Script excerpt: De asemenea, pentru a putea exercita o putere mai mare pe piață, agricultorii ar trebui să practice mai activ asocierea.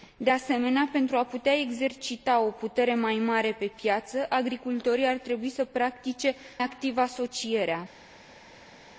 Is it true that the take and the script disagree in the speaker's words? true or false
true